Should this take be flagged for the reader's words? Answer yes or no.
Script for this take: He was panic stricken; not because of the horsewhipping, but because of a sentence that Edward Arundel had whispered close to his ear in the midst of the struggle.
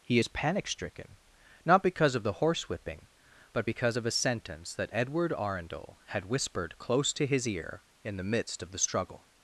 yes